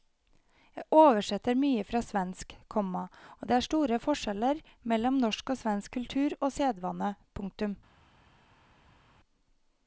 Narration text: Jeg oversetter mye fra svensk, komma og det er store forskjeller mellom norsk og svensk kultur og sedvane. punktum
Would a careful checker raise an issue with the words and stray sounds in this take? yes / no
no